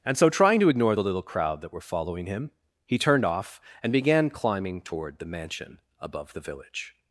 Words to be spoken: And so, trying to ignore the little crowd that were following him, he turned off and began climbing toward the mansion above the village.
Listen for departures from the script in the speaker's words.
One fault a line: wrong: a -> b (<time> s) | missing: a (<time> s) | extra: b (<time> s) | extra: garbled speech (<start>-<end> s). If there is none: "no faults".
no faults